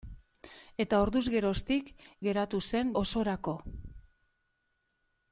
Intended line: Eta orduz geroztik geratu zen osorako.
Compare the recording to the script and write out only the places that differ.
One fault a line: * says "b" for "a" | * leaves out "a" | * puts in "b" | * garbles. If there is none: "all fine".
all fine